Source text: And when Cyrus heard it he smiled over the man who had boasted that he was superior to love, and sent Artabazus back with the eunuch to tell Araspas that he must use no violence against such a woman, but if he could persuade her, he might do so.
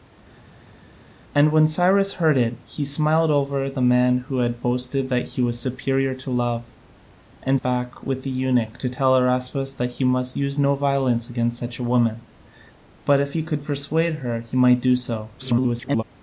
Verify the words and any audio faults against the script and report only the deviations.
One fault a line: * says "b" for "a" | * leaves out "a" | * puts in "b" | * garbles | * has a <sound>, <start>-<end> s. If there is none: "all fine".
* leaves out "sent Artabazus"
* garbles